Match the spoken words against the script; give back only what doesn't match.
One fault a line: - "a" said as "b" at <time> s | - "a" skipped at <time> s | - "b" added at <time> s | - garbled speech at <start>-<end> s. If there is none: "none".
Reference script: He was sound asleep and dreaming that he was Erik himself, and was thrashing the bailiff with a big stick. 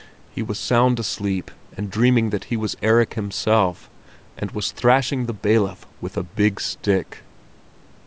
none